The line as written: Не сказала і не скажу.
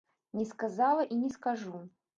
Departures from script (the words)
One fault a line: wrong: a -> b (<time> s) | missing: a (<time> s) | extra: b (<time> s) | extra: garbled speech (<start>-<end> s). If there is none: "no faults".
no faults